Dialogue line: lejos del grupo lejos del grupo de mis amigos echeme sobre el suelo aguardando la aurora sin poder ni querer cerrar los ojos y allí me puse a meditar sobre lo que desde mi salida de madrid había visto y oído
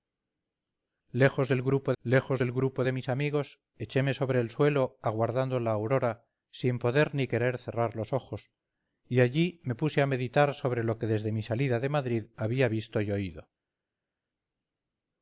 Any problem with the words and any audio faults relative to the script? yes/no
no